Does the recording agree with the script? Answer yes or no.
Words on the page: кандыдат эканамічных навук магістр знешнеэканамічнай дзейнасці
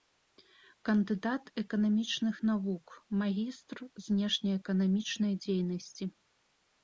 yes